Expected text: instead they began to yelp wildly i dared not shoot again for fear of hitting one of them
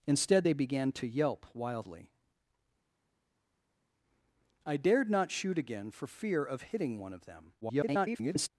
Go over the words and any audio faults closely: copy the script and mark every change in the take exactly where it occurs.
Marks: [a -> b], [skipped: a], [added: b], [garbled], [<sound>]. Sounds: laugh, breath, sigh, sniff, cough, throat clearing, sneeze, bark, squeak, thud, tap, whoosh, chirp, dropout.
instead they began to yelp wildly i dared not shoot again for fear of hitting one of them [garbled]